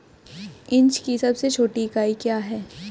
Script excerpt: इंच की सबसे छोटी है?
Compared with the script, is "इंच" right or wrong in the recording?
right